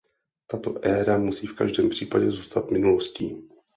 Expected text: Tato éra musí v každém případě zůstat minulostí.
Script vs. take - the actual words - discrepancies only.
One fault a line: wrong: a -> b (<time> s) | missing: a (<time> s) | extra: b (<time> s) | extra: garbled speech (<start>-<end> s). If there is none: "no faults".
no faults